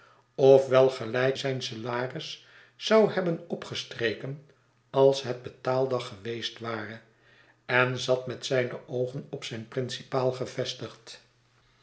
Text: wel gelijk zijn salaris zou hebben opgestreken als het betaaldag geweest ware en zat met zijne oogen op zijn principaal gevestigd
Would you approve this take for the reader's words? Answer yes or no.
yes